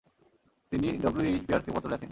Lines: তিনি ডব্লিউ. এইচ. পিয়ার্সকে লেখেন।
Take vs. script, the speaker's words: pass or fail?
fail